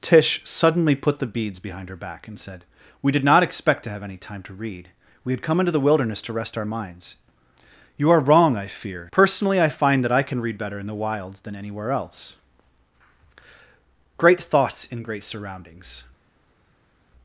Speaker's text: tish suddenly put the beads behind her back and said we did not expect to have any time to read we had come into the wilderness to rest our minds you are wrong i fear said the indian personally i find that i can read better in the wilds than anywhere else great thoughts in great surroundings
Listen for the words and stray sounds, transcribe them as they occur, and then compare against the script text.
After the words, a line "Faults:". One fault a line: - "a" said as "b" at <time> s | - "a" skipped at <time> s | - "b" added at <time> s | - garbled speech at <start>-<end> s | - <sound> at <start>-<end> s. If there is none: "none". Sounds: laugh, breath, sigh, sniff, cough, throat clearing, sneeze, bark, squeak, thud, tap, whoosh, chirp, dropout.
tish suddenly put the beads behind her back and said we did not expect to have any time to read we had come into the wilderness to rest our minds you are wrong i fear personally i find that i can read better in the wilds than anywhere else great thoughts in great surroundings
Faults:
- "said the indian" skipped at 9.1 s